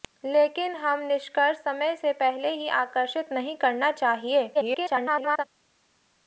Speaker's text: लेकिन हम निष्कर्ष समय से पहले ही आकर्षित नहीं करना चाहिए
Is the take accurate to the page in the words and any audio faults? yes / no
no